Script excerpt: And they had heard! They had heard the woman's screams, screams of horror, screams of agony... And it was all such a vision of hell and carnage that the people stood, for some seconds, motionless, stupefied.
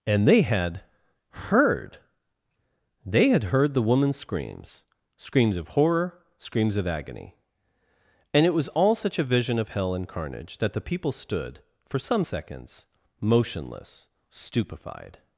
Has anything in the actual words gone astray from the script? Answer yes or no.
no